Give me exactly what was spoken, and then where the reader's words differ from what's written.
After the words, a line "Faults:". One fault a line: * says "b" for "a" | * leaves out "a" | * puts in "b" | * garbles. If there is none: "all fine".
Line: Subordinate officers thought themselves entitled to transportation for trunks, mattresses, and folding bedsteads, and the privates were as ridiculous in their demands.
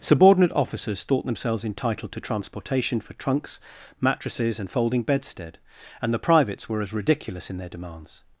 Subordinate officers thought themselves entitled to transportation for trunks, mattresses, and folding bedstead, and the privates were as ridiculous in their demands.
Faults:
* says "bedstead" for "bedsteads"